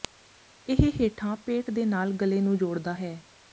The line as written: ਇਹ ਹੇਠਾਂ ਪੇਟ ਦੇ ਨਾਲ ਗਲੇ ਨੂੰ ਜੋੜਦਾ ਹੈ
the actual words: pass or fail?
pass